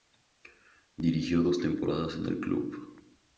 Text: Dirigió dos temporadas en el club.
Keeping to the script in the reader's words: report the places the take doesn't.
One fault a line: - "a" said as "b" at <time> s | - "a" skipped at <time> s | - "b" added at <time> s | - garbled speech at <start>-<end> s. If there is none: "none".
none